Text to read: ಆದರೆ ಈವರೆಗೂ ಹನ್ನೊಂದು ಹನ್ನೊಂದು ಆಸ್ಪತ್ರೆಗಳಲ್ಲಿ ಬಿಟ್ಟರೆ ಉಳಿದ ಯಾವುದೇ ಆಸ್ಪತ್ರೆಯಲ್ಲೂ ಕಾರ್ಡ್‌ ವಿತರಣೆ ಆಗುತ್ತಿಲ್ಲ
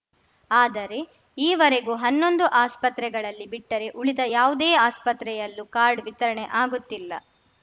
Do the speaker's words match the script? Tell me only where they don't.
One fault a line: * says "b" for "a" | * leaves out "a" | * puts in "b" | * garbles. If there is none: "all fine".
* leaves out "ಹನ್ನೊಂದು"